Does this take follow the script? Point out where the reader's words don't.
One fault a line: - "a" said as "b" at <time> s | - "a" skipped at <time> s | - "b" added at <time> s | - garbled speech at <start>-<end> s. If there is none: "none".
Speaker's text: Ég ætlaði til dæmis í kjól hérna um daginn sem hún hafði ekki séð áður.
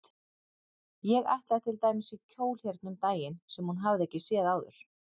none